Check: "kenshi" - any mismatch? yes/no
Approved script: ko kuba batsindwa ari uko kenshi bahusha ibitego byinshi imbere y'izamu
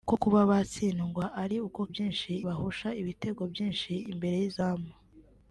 yes